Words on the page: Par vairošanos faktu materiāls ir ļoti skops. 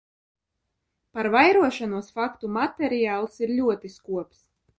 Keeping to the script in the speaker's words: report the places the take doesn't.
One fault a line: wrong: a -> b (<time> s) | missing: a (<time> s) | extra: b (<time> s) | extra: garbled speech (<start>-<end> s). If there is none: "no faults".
no faults